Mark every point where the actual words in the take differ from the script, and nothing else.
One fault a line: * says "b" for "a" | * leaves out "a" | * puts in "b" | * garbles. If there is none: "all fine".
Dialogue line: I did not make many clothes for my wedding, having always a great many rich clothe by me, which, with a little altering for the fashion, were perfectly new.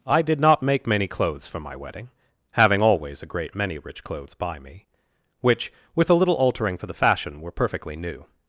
* says "clothes" for "clothe"